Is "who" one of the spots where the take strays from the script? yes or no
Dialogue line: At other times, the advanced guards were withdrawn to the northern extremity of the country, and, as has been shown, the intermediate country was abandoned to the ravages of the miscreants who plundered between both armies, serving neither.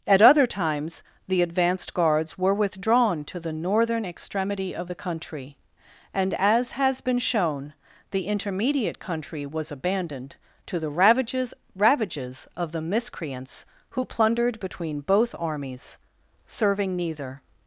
no